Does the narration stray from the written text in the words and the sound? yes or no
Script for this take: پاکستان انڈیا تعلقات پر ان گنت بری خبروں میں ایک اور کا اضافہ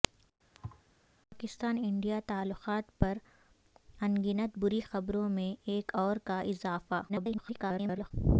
yes